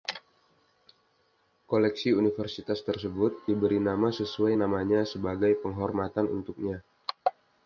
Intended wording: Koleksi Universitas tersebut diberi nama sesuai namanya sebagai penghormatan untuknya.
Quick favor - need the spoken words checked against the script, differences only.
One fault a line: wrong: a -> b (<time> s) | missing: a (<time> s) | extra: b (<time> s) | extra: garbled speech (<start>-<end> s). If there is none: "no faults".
no faults